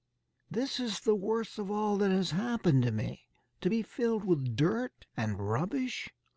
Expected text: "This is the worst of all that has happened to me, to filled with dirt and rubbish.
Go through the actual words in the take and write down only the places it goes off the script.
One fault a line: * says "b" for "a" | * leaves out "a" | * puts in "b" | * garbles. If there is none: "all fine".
* puts in "be"